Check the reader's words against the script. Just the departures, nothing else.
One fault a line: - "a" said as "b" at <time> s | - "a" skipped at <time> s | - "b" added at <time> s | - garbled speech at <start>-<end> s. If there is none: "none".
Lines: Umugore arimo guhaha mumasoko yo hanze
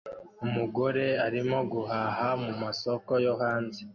none